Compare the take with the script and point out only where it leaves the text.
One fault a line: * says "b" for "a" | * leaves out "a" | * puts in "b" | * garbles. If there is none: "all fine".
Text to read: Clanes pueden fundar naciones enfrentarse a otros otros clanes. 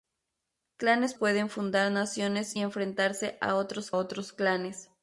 all fine